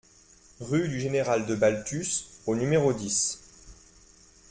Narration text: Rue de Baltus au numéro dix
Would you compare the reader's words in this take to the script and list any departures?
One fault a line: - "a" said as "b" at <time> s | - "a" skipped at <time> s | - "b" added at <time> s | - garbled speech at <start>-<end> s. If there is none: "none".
- "du Général" added at 0.9 s